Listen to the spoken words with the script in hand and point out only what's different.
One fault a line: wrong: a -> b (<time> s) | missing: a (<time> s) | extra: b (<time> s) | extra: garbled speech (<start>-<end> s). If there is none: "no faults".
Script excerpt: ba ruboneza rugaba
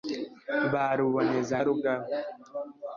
no faults